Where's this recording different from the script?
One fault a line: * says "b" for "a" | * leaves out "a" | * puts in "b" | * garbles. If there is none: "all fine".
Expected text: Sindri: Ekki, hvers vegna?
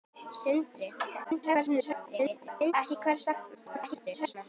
* garbles
* garbles